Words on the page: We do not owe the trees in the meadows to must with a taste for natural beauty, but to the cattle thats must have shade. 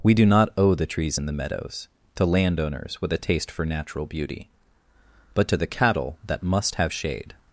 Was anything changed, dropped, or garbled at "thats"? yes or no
yes